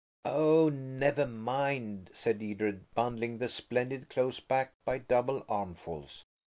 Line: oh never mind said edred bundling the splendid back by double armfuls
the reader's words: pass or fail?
fail